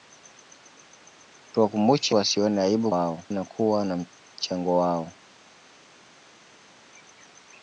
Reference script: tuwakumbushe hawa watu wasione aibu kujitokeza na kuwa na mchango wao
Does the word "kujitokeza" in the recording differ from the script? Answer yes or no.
yes